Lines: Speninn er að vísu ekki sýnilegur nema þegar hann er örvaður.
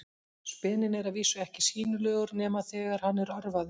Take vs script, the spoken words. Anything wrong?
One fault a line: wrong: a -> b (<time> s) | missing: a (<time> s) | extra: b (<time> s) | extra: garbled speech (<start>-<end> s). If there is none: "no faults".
no faults